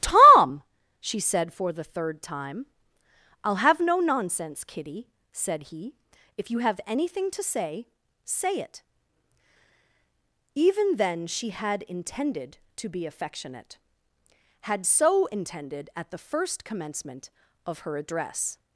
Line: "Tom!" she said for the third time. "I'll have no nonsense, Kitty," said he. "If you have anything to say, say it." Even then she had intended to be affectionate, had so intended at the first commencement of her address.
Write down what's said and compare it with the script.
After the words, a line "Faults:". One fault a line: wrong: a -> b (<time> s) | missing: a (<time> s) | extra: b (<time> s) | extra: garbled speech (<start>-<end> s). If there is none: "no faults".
"Tom!" she said for the third time. "I'll have no nonsense, Kitty," said he. "If you have anything to say, say it." Even then she had intended to be affectionate, had so intended at the first commencement of her address.
Faults:
no faults